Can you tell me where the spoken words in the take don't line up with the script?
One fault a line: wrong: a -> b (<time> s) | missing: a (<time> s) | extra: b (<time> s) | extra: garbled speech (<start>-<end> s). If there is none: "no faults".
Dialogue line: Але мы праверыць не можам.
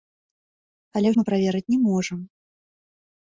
no faults